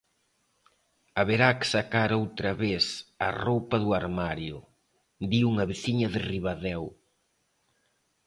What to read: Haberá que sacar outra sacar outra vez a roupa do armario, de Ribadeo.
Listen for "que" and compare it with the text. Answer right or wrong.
right